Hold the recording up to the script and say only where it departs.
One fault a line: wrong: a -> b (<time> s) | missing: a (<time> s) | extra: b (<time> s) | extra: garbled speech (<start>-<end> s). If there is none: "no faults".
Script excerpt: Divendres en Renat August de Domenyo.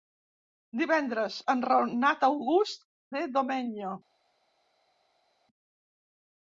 no faults